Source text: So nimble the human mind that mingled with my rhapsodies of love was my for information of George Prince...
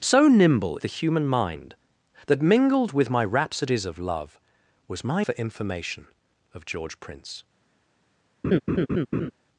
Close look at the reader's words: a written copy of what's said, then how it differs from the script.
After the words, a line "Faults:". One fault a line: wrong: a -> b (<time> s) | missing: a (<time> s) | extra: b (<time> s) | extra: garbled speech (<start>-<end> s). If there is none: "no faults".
So nimble the human mind that mingled with my rhapsodies of love was my for information of George Prince...
Faults:
no faults